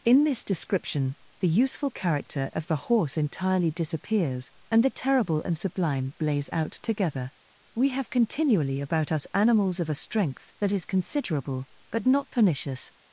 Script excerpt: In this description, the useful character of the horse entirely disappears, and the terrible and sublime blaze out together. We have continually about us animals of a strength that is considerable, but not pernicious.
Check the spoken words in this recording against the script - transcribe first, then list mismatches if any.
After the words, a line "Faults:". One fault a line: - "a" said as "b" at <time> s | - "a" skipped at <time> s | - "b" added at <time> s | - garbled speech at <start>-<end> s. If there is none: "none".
In this description, the useful character of the horse entirely disappears, and the terrible and sublime blaze out together. We have continually about us animals of a strength that is considerable, but not pernicious.
Faults:
none